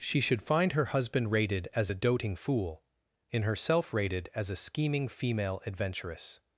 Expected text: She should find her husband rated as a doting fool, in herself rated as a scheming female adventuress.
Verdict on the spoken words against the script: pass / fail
pass